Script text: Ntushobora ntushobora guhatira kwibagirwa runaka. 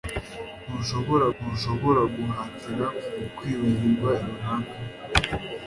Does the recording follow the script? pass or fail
pass